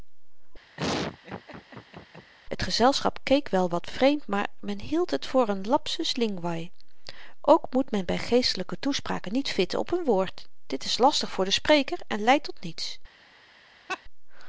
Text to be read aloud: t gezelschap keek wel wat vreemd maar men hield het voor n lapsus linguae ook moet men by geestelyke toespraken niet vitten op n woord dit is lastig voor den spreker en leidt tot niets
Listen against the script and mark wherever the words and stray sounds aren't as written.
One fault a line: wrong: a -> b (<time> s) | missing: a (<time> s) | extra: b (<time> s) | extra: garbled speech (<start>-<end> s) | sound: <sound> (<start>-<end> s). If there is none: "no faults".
sound: laugh (0.8-2.3 s)
sound: laugh (13.9-14.0 s)